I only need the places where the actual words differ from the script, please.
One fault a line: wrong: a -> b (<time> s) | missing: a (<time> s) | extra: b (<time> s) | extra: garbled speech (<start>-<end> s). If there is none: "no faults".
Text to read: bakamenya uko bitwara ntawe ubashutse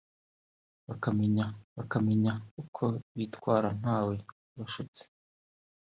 extra: bakamenya (1.8 s)